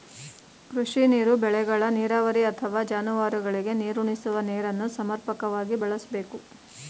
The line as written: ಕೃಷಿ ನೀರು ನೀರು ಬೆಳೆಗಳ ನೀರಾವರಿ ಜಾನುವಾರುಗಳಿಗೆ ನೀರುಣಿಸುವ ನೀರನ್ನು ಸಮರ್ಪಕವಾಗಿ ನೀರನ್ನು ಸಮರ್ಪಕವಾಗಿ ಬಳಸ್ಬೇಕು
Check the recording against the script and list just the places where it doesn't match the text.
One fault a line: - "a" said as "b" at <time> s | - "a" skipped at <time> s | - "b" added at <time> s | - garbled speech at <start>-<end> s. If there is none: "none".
- "ನೀರು" skipped at 1.3 s
- "ಅಥವಾ" added at 2.5 s
- "ನೀರನ್ನು ಸಮರ್ಪಕವಾಗಿ" skipped at 5.8 s